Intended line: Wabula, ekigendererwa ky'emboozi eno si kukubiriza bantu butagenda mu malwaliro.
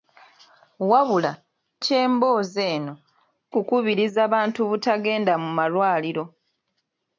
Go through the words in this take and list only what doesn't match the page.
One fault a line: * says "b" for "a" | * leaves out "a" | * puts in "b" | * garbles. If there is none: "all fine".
* leaves out "ekigendererwa"
* leaves out "si"